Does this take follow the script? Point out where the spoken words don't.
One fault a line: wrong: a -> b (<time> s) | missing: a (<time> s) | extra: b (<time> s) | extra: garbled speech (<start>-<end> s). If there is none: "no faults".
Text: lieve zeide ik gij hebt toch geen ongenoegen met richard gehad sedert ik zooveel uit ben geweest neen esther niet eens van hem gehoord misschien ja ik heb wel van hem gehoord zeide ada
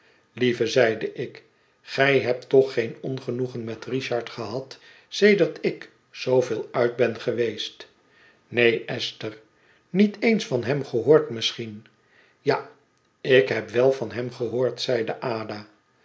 no faults